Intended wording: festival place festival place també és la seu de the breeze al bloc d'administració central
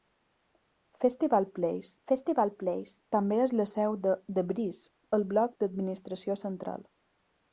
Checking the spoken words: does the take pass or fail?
pass